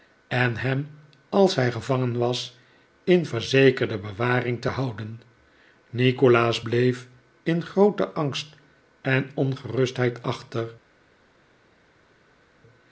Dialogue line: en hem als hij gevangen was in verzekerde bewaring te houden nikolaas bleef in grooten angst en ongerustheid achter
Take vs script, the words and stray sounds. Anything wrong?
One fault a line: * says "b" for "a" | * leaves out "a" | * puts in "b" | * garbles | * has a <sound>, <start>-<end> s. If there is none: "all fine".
all fine